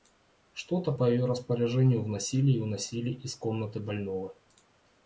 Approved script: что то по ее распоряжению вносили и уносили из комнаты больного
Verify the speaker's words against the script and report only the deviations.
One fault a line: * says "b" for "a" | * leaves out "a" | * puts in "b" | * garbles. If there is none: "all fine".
all fine